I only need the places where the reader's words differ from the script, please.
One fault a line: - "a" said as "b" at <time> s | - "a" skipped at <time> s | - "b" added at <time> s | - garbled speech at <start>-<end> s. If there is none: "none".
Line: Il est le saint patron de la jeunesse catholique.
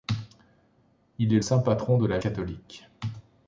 - "le" skipped at 1.4 s
- "jeunesse" skipped at 2.2 s